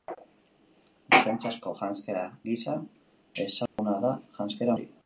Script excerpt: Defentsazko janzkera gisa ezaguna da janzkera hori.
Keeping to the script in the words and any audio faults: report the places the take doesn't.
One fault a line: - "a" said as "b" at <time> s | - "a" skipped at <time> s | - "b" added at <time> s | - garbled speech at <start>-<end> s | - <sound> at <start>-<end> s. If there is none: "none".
- dropout at 3.7-3.8 s